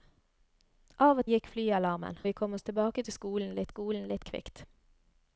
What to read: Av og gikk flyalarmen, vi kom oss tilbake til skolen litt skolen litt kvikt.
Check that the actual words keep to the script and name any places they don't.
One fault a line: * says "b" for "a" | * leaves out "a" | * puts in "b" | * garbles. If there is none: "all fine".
all fine